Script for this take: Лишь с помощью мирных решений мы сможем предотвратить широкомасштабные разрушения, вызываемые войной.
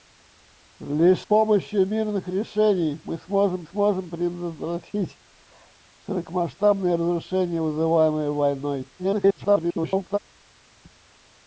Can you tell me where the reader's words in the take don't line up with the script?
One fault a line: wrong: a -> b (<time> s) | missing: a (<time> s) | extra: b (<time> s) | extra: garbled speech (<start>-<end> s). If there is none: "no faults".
missing: с (1.2 s)
extra: сможем (3.6 s)
extra: garbled speech (9.0-10.2 s)